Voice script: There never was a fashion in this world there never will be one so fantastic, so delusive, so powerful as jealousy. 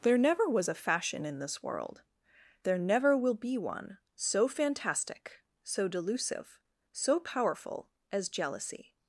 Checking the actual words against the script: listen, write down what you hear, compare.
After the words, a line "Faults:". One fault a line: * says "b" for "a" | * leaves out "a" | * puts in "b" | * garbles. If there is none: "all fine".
There never was a fashion in this world there never will be one so fantastic, so delusive, so powerful as jealousy.
Faults:
all fine